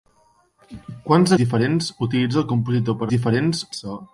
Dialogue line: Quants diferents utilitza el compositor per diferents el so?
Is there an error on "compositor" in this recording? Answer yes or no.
no